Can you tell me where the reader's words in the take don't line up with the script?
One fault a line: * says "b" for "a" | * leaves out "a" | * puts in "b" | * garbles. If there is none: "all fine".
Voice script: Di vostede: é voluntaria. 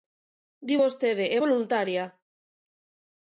all fine